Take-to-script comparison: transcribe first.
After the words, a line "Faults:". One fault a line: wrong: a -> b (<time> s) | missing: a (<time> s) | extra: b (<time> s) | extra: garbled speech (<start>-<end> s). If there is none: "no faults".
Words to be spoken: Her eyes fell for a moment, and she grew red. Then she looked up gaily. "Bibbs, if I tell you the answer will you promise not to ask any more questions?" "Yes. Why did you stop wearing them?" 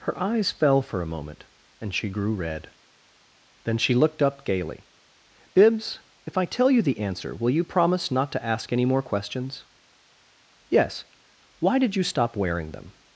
Her eyes fell for a moment, and she grew red. Then she looked up gaily. "Bibbs, if I tell you the answer will you promise not to ask any more questions?" "Yes. Why did you stop wearing them?"
Faults:
no faults